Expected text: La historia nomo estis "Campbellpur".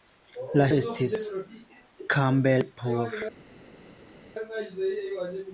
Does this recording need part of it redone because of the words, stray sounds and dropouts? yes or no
yes